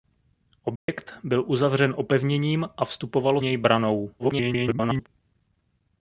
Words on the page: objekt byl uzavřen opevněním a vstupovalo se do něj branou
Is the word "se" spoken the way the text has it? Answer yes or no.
no